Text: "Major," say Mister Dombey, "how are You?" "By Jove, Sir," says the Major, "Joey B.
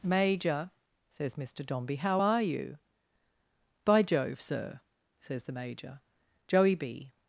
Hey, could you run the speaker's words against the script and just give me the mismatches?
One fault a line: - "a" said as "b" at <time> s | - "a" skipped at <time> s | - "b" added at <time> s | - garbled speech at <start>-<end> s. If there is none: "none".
- "say" said as "says" at 1.1 s